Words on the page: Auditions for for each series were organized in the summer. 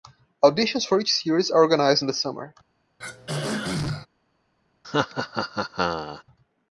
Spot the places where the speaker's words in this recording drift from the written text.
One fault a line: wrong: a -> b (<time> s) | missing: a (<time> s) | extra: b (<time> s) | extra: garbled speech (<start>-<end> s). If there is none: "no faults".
missing: for (1.0 s)
wrong: were -> are (1.5 s)